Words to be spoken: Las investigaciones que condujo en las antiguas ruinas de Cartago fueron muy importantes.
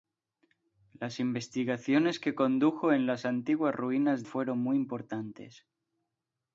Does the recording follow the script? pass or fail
fail